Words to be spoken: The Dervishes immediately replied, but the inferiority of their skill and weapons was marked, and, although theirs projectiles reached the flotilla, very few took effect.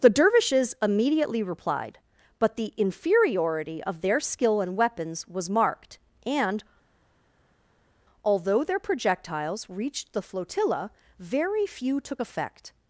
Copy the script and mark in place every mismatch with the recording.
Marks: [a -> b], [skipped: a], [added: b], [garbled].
The Dervishes immediately replied, but the inferiority of their skill and weapons was marked, and, although [theirs -> their] projectiles reached the flotilla, very few took effect.